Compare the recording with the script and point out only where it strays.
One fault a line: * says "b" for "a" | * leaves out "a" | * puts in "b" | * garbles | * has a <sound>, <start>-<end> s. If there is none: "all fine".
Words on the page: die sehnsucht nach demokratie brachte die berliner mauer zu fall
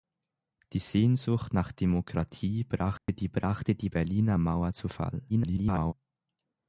* has a dropout, 3.0-3.1 s
* puts in "brachte die"
* garbles